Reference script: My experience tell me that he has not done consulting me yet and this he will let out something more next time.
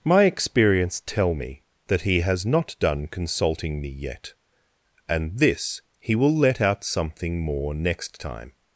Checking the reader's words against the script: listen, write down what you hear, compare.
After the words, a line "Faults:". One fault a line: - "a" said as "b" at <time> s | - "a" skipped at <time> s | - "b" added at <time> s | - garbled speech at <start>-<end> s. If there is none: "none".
My experience tell me that he has not done consulting me yet and this he will let out something more next time.
Faults:
none